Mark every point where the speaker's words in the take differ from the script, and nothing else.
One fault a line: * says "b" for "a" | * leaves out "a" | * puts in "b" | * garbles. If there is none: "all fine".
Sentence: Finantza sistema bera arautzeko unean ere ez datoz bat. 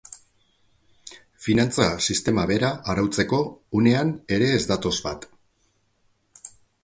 all fine